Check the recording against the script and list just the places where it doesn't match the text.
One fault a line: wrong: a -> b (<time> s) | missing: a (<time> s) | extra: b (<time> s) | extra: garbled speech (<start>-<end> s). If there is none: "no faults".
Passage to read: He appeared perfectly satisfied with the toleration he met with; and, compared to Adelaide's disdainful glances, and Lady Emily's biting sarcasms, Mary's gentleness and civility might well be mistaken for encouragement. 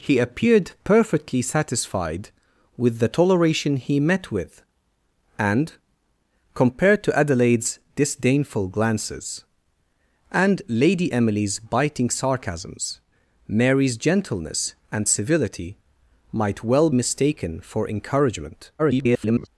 missing: be (16.9 s)
extra: garbled speech (18.8-19.5 s)